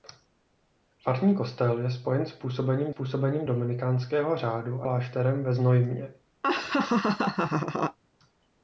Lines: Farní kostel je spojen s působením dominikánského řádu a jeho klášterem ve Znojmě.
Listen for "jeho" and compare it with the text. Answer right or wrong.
wrong